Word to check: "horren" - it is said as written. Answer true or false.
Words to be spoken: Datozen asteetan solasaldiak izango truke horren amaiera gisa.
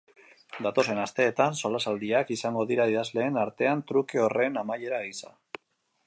true